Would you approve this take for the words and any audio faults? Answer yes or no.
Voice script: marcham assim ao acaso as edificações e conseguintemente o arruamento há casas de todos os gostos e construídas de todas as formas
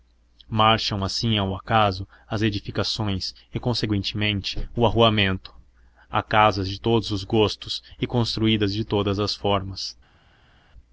yes